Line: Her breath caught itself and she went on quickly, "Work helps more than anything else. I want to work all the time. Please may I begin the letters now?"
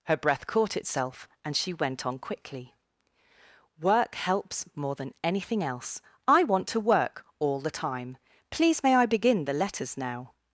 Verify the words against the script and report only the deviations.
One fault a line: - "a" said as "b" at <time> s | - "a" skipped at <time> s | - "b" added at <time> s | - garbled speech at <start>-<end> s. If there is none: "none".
none